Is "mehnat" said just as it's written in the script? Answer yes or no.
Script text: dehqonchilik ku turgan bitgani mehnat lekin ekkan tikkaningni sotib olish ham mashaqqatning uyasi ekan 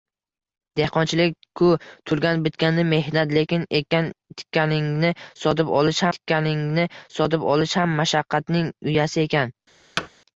yes